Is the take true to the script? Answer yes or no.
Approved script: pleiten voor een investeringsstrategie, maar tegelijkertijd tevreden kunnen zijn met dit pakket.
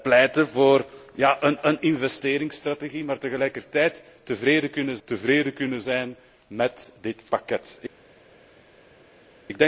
no